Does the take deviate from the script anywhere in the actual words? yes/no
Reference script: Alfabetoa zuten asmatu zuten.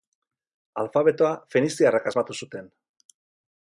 yes